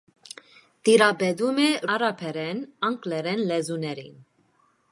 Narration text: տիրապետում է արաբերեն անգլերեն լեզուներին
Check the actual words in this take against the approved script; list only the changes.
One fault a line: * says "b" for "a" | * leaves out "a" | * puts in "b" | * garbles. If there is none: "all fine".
all fine